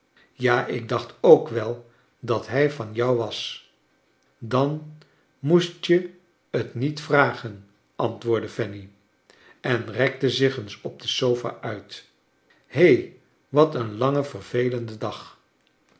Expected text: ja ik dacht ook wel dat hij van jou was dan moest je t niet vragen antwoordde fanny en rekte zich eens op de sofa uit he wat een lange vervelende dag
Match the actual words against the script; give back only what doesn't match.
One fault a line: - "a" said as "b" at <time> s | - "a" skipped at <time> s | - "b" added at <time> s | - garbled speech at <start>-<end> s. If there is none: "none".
none